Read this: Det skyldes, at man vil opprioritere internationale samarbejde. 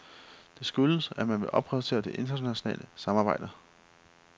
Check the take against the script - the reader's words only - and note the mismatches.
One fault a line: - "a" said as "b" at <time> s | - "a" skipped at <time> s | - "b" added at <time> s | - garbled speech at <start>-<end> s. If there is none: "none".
- "det" added at 2.0 s